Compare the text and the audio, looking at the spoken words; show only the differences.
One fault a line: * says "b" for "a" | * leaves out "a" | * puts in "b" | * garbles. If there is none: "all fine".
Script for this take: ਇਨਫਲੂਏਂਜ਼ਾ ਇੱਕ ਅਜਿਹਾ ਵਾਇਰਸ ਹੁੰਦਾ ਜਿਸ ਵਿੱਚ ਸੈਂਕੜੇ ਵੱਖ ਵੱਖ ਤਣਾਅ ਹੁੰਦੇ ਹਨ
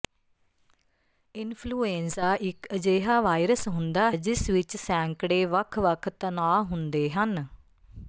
all fine